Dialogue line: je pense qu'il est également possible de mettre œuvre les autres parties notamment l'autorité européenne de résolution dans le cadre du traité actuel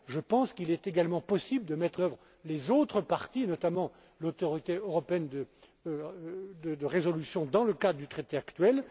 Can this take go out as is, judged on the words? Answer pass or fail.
pass